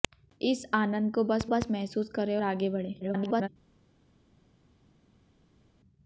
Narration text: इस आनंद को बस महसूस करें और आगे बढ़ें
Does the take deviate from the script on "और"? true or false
true